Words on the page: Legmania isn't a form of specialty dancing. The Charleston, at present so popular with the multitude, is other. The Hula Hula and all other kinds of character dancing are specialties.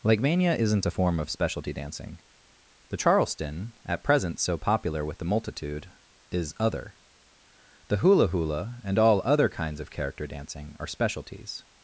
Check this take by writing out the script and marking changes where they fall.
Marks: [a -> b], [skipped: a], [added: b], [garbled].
Legmania isn't a form of specialty dancing. The Charleston, at present so popular with the multitude, is other. The Hula Hula and all other kinds of character dancing are specialties.